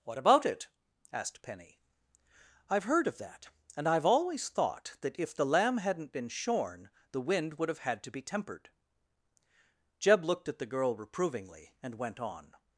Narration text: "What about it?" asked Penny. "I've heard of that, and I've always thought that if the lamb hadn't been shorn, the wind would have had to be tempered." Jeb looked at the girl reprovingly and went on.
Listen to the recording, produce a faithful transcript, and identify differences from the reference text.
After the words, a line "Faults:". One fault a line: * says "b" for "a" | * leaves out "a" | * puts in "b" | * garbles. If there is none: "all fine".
"What about it?" asked Penny. "I've heard of that, and I've always thought that if the lamb hadn't been shorn, the wind would have had to be tempered." Jeb looked at the girl reprovingly and went on.
Faults:
all fine